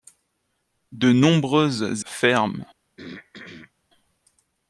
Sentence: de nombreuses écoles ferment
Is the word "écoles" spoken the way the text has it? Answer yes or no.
no